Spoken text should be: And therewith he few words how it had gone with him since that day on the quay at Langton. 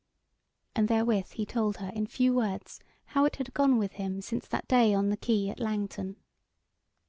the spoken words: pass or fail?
fail